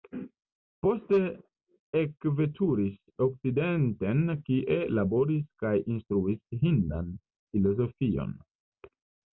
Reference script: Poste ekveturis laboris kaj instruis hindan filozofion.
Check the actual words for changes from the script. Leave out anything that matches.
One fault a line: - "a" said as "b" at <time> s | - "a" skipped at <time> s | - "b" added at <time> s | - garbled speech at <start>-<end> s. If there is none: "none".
- "okcidenten kie" added at 3.3 s